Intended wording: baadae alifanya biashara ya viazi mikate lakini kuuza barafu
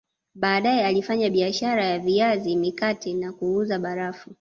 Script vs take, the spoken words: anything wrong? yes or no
yes